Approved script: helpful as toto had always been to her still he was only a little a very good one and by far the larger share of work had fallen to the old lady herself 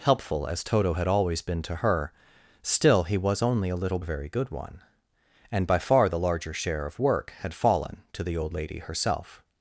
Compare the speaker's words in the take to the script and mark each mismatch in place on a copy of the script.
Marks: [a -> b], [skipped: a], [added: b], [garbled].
helpful as toto had always been to her still he was only a little a very good one and by far the larger share of work had fallen to the old lady herself